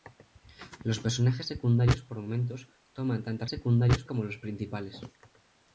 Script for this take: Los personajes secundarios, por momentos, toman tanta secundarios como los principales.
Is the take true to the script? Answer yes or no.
yes